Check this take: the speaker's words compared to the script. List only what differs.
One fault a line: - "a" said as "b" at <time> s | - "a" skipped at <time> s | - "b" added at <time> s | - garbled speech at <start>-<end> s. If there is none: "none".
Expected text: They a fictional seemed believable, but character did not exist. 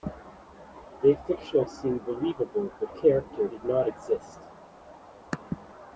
none